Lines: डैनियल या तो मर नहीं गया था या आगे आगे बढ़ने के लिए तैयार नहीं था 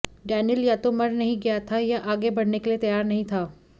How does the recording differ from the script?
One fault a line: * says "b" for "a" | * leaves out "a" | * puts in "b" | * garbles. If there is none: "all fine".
* leaves out "आगे"